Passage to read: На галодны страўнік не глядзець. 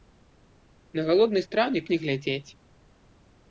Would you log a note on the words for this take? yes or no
no